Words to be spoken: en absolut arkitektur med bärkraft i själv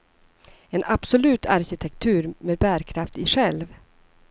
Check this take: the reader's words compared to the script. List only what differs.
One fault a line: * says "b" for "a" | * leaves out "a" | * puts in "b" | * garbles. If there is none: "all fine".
all fine